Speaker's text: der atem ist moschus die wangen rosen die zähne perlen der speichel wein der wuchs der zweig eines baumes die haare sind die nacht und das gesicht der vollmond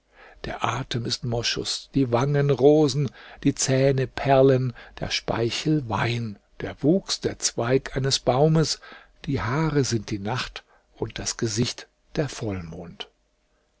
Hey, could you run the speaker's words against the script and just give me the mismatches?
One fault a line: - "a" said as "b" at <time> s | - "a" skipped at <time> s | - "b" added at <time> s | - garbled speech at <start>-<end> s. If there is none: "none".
none